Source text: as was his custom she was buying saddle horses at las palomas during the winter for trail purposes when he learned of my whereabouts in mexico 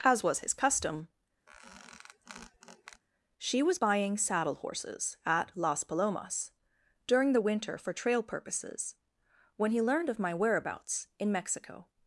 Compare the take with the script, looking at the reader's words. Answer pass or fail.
pass